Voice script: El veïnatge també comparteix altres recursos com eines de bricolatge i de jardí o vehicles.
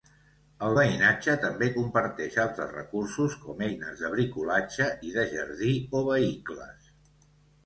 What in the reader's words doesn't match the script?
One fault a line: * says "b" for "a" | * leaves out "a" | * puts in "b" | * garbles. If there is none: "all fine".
all fine